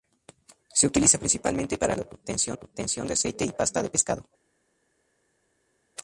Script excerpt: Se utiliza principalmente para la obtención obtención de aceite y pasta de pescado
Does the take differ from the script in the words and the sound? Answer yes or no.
no